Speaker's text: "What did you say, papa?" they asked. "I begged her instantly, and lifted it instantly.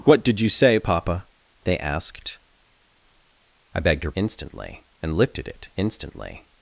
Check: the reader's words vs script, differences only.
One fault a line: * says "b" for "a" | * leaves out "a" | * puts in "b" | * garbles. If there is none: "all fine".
all fine